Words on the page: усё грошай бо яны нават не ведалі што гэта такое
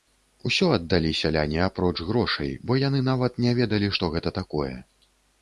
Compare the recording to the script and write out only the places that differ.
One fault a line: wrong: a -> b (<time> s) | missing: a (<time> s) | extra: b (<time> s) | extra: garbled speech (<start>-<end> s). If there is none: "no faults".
extra: аддалі сяляне апроч (0.8 s)